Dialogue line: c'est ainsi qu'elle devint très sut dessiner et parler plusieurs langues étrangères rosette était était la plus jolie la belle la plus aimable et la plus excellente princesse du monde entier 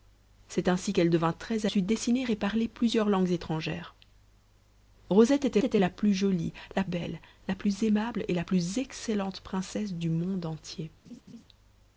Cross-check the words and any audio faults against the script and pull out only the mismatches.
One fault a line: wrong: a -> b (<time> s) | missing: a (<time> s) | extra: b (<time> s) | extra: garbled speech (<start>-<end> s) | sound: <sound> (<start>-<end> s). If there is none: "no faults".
sound: laugh (11.0-11.4 s)